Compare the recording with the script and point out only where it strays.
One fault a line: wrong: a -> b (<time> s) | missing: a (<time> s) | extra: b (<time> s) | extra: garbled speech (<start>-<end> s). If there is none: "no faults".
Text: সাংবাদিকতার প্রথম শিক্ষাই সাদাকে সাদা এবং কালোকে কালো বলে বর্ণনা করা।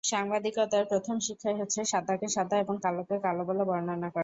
extra: হচ্ছে (1.6 s)